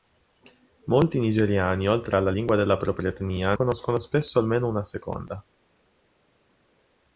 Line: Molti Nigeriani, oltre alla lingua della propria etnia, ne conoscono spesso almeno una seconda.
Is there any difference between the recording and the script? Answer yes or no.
yes